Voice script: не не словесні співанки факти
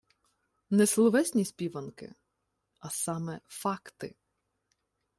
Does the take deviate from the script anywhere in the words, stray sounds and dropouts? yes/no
yes